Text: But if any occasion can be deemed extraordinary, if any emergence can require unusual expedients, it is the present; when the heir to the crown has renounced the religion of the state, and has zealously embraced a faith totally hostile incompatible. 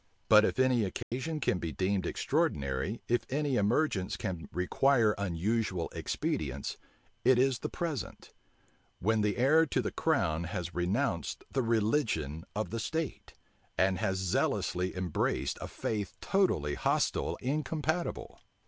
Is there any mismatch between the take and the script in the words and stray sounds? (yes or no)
yes